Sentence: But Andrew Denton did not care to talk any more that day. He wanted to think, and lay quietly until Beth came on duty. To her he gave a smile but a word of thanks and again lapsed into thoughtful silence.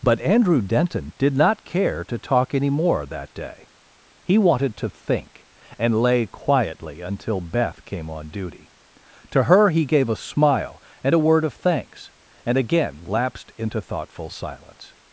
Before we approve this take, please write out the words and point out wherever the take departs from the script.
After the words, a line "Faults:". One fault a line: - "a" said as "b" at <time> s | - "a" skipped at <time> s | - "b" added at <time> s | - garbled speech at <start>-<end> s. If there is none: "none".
But Andrew Denton did not care to talk any more that day. He wanted to think, and lay quietly until Beth came on duty. To her he gave a smile and a word of thanks and again lapsed into thoughtful silence.
Faults:
- "but" said as "and" at 11.0 s